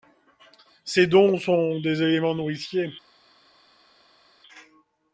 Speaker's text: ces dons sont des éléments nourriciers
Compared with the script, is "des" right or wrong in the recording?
right